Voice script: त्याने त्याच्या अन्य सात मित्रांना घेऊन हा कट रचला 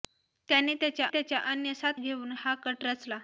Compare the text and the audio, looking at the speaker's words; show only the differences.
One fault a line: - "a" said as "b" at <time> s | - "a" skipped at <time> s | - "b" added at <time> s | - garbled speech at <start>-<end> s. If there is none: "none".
- "त्याच्या" added at 1.1 s
- "मित्रांना" skipped at 2.0 s